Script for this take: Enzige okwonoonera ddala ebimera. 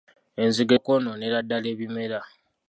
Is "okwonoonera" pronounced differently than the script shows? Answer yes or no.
no